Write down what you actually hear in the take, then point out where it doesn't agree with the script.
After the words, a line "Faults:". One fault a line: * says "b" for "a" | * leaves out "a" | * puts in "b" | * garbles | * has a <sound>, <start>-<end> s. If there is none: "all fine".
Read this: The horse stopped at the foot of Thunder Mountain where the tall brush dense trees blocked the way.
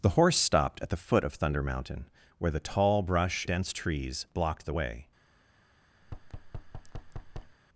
The horse stopped at the foot of Thunder Mountain where the tall brush dense trees blocked the way.
Faults:
* has a thud, 6.0-7.6 s